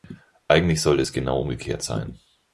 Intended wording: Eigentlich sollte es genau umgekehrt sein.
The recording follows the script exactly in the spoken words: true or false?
true